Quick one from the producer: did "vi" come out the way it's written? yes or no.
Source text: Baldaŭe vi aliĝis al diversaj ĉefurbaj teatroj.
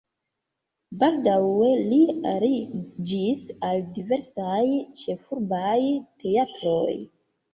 no